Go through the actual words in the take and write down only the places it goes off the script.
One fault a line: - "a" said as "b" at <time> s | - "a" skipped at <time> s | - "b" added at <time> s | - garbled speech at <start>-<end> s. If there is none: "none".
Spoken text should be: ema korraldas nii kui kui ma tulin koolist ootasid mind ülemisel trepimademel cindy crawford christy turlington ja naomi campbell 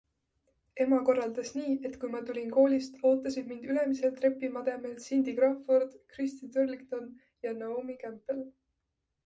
- "kui" said as "et" at 1.9 s